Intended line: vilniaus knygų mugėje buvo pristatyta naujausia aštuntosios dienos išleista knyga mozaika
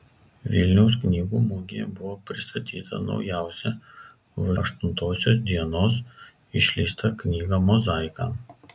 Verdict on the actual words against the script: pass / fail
pass